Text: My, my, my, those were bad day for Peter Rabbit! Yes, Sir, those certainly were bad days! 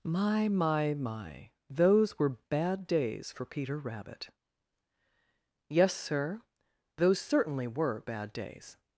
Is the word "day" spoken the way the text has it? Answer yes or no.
no